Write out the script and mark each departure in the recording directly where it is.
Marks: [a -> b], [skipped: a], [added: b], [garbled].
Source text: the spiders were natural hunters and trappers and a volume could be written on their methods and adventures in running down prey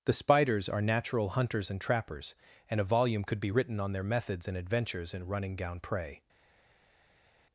the spiders [were -> are] natural hunters and trappers and a volume could be written on their methods and adventures in running down prey